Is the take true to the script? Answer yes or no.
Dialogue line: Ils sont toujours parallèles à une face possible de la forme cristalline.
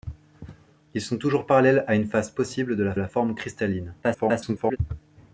no